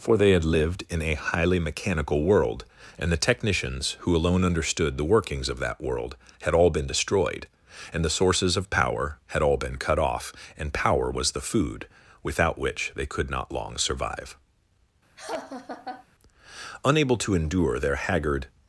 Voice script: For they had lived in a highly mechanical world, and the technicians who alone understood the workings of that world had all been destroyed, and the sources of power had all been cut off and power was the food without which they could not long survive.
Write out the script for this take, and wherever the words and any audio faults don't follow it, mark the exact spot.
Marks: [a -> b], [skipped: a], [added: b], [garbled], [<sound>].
For they had lived in a highly mechanical world, and the technicians who alone understood the workings of that world had all been destroyed, and the sources of power had all been cut off and power was the food without which they could not long survive. [laugh] [added: Unable to endure their haggard]